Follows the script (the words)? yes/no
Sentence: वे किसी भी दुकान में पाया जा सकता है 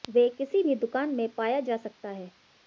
yes